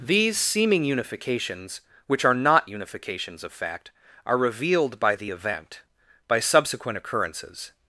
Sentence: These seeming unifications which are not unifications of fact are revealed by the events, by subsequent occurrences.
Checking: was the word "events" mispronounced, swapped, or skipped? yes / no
yes